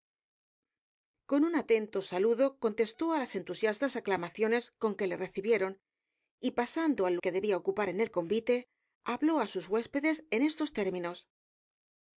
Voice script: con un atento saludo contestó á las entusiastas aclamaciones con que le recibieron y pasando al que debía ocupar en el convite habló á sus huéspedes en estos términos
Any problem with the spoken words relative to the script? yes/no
no